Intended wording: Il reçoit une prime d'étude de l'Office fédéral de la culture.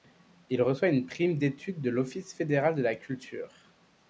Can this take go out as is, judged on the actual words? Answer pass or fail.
pass